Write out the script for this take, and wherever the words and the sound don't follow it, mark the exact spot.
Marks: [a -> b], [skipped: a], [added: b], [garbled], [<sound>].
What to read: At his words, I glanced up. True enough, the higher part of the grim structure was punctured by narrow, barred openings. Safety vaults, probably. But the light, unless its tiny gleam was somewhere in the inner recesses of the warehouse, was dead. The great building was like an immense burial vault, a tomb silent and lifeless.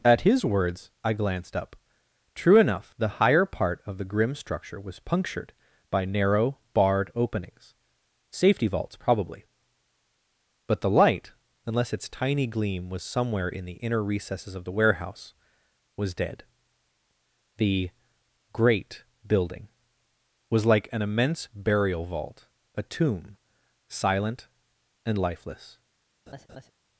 At his words, I glanced up. True enough, the higher part of the grim structure was punctured by narrow, barred openings. Safety vaults, probably. But the light, unless its tiny gleam was somewhere in the inner recesses of the warehouse, was dead. The great building was like an immense burial vault, a tomb silent and lifeless. [laugh]